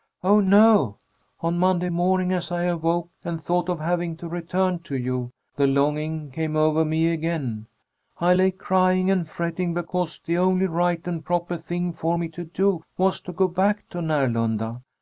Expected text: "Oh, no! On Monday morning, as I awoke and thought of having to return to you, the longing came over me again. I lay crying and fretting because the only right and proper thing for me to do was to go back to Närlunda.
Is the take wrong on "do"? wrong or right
right